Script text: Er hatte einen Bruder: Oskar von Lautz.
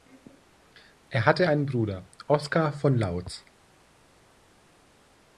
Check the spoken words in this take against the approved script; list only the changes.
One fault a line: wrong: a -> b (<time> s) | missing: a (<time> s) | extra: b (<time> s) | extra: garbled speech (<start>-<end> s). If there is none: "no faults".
no faults